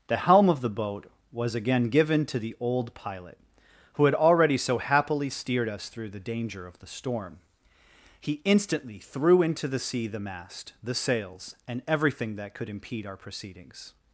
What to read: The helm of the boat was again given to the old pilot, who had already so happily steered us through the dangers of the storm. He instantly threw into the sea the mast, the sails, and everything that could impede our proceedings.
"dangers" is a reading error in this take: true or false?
true